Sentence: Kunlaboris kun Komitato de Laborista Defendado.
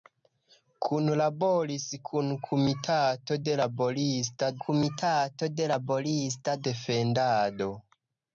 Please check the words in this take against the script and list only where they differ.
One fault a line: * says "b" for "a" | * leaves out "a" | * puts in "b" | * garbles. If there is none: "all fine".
* puts in "Komitato de Laborista"